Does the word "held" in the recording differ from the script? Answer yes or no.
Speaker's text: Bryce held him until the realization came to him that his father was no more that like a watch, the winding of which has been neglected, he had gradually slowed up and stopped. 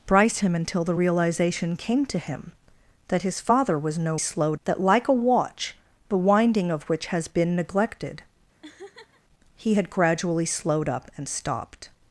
yes